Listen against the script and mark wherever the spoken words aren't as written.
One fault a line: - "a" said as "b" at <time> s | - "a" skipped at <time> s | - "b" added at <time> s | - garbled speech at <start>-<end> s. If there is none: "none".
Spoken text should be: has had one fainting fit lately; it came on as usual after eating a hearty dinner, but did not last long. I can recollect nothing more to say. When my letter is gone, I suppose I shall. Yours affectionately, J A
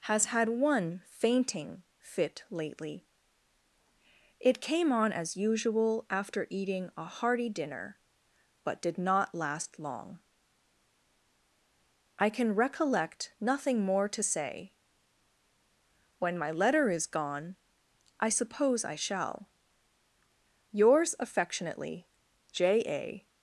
none